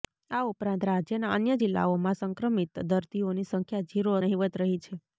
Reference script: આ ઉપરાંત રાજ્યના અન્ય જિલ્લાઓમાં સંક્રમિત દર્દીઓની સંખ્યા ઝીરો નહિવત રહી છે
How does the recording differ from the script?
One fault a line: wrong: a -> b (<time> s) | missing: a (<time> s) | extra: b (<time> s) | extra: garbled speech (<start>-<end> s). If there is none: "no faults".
no faults